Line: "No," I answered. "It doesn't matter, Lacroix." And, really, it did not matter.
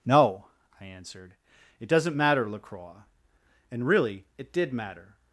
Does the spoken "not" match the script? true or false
false